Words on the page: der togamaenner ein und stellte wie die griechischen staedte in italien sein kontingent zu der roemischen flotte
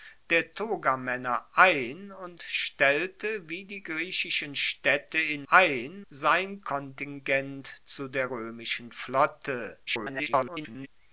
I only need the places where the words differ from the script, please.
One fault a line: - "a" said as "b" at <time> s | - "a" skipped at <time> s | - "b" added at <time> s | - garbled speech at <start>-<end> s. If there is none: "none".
- "italien" said as "ein" at 5.5 s
- garbled speech at 9.9-10.9 s